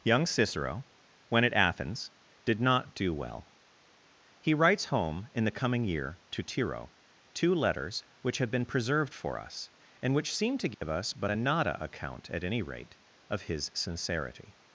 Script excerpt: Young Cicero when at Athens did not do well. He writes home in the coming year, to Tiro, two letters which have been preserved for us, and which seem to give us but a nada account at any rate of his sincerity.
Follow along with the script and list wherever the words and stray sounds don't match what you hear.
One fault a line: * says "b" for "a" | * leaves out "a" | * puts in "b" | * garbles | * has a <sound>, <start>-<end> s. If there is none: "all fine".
* has a dropout, 10.7-10.8 s